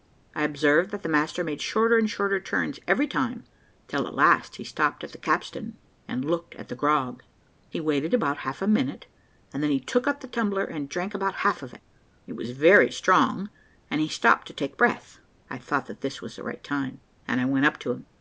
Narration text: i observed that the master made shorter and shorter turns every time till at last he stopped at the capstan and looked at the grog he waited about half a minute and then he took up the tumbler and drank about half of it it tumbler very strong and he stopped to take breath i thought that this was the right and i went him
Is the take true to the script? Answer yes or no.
no